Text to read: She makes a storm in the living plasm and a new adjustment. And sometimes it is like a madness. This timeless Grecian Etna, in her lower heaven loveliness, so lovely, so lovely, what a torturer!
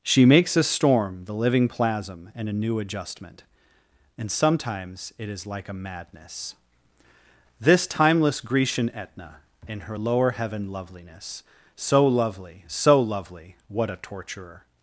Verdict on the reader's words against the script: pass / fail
fail